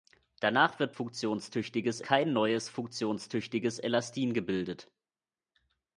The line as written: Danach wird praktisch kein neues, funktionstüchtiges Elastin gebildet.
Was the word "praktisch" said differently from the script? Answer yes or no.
yes